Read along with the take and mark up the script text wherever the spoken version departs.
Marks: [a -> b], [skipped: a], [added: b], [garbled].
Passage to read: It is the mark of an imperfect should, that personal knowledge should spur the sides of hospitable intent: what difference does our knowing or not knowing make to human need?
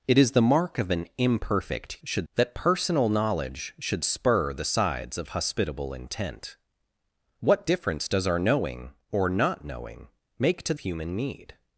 It is the mark of an imperfect should, that personal knowledge should spur the sides of hospitable intent: what difference does our knowing or not knowing make to human need?